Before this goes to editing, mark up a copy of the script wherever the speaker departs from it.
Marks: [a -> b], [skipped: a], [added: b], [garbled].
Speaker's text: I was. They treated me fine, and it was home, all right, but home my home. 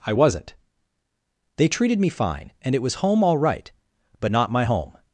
I [was. -> wasn't] They treated me fine, and it was home, all right, but [home -> not] my home.